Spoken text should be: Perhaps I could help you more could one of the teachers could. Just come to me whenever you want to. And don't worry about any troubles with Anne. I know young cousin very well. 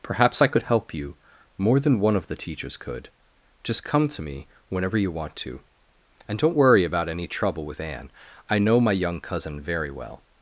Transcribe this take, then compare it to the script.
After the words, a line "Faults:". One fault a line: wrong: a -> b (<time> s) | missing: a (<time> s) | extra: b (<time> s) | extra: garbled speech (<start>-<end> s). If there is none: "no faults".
Perhaps I could help you more than one of the teachers could. Just come to me whenever you want to. And don't worry about any trouble with Anne. I know my young cousin very well.
Faults:
wrong: could -> than (1.8 s)
wrong: troubles -> trouble (7.3 s)
extra: my (8.8 s)